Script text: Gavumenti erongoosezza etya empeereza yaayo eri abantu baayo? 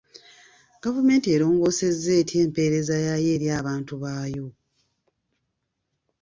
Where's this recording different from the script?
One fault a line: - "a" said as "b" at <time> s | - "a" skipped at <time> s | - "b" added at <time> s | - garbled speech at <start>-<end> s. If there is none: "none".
none